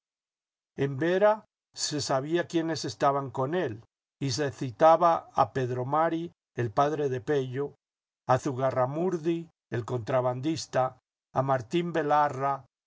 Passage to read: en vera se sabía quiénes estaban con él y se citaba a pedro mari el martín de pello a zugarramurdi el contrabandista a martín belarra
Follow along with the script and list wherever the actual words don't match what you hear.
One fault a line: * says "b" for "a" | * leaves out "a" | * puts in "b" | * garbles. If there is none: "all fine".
* says "padre" for "martín"